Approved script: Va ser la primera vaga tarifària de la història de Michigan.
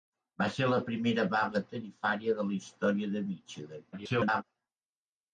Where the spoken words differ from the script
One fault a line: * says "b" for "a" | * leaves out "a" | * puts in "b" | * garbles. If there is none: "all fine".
* garbles